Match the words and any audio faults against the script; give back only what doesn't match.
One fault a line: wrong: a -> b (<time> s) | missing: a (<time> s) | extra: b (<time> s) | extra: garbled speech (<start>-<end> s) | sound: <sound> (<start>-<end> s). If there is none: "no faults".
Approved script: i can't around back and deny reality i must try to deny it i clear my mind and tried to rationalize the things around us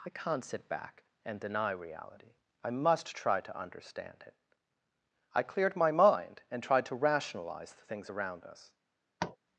wrong: around -> sit (0.4 s)
wrong: deny -> understand (3.6 s)
wrong: clear -> cleared (5.4 s)
sound: tap (9.2-9.4 s)